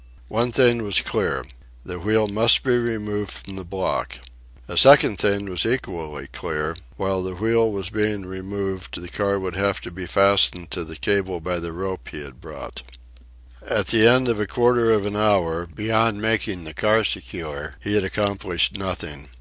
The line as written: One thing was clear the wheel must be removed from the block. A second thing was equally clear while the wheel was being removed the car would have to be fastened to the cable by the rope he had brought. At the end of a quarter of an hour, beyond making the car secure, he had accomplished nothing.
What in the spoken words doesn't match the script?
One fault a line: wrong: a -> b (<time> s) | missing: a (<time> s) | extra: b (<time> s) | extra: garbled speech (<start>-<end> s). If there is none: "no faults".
no faults